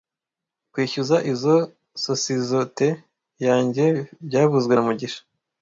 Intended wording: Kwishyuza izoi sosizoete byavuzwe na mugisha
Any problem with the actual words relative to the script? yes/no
yes